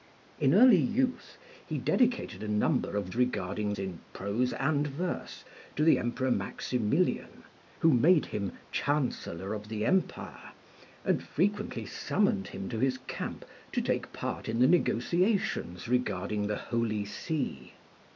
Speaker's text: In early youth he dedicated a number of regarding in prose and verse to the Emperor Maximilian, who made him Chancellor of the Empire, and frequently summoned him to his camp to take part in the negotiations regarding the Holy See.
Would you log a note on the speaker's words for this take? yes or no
no